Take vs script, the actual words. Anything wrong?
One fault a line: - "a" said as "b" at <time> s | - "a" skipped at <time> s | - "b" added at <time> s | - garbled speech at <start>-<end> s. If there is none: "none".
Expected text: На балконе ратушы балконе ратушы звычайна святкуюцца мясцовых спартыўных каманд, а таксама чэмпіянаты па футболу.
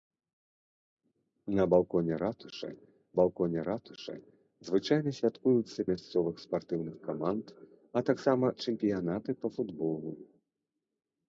none